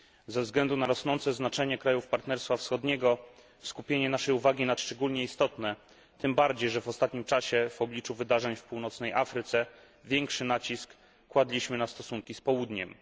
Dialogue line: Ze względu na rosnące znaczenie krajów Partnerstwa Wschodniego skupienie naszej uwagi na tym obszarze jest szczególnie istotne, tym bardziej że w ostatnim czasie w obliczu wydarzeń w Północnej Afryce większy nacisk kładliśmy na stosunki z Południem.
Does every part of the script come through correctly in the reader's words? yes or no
no